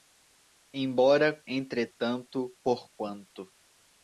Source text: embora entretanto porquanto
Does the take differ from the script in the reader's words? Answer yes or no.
no